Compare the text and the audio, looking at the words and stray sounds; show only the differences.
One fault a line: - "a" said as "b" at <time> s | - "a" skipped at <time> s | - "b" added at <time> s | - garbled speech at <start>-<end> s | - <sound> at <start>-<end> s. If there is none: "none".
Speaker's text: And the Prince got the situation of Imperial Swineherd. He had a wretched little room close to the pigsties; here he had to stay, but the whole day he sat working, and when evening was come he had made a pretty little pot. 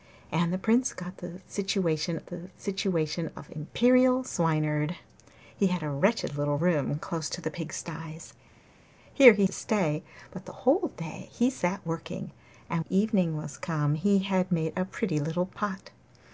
- "the situation" added at 2.3 s
- "had" skipped at 9.5 s
- "when" skipped at 12.8 s